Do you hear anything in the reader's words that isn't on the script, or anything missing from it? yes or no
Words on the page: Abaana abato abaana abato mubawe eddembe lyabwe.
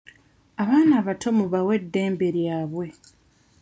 yes